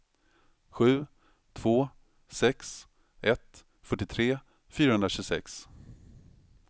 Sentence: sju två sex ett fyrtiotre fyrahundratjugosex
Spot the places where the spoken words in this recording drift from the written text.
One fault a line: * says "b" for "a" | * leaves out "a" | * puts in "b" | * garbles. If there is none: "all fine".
all fine